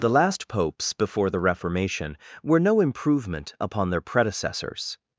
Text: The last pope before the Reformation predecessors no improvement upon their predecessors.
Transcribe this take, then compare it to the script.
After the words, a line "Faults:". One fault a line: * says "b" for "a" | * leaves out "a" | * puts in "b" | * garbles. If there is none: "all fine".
The last popes before the Reformation were no improvement upon their predecessors.
Faults:
* says "popes" for "pope"
* says "were" for "predecessors"